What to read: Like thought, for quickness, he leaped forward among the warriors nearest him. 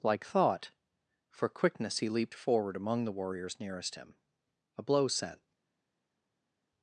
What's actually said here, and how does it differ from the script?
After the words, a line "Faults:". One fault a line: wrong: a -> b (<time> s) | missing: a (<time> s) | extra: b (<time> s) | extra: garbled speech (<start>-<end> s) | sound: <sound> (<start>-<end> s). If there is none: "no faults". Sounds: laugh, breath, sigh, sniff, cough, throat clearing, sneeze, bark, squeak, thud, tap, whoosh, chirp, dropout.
Like thought, for quickness, he leaped forward among the warriors nearest him. A blow sent
Faults:
extra: A blow sent (4.8 s)